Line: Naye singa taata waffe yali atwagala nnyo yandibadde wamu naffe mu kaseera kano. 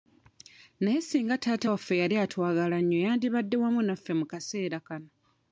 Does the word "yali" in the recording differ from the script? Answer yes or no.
no